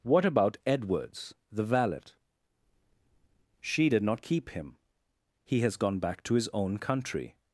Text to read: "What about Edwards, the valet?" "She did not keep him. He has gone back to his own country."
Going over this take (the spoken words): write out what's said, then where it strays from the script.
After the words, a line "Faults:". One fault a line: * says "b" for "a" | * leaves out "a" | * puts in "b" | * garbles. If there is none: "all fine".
"What about Edwards, the valet?" "She did not keep him. He has gone back to his own country."
Faults:
all fine